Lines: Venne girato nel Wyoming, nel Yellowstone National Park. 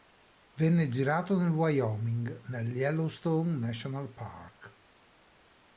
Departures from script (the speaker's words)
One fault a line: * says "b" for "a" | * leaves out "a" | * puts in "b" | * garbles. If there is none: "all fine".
all fine